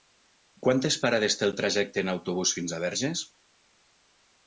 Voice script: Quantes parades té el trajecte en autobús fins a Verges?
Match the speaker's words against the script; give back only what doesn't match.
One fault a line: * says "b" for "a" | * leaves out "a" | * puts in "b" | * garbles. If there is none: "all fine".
all fine